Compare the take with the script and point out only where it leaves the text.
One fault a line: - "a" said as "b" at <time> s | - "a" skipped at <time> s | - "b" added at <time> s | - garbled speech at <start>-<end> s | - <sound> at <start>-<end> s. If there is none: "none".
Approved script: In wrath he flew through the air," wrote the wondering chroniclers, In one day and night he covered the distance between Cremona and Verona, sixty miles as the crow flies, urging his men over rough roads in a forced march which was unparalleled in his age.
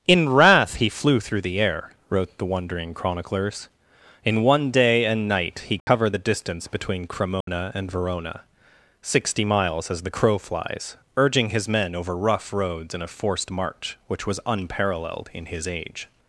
- dropout at 5.8-5.9 s
- dropout at 7.4-7.5 s